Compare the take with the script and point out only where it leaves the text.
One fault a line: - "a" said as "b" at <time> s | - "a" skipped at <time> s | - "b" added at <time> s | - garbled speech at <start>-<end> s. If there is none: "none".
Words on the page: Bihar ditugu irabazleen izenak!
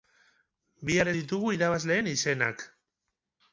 none